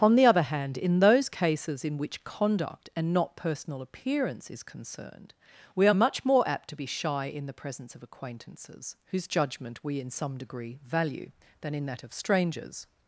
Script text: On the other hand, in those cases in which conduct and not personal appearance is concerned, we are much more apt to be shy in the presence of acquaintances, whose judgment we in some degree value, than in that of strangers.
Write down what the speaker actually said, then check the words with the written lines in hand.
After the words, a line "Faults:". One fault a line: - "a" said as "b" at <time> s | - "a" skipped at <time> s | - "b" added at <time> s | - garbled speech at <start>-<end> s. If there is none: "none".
On the other hand, in those cases in which conduct and not personal appearance is concerned, we are much more apt to be shy in the presence of acquaintances, whose judgment we in some degree value, than in that of strangers.
Faults:
none